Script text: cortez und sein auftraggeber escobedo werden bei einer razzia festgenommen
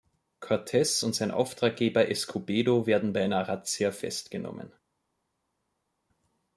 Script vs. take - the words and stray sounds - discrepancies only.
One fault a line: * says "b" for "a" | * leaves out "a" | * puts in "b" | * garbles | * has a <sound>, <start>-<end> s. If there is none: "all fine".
all fine